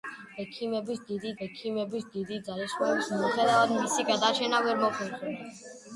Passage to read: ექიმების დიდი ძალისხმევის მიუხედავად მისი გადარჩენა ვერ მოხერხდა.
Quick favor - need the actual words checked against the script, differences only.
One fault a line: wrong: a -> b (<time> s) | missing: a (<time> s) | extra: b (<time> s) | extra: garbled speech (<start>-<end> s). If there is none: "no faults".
extra: ექიმების დიდი (1.5 s)